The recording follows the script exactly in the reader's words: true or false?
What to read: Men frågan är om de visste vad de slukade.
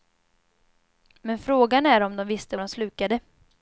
false